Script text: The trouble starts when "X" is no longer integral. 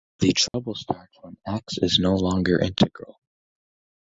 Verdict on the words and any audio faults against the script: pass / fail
fail